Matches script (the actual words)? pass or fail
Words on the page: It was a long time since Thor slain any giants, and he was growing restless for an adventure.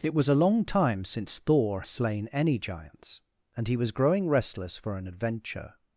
pass